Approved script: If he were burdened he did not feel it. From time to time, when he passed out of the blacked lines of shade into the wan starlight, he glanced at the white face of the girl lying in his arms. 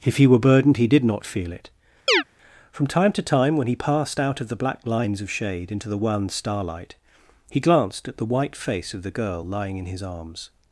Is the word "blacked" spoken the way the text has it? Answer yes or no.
no